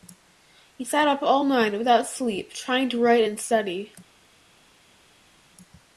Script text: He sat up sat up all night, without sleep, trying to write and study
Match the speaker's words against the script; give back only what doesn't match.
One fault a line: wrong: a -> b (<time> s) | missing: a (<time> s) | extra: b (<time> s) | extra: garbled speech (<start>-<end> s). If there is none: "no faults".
missing: sat up (1.2 s)